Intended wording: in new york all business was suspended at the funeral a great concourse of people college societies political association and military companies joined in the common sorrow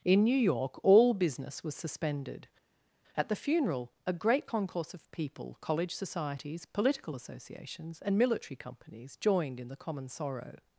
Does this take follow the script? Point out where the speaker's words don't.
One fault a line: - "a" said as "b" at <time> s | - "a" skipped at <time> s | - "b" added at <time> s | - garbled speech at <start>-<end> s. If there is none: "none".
- "association" said as "associations" at 7.1 s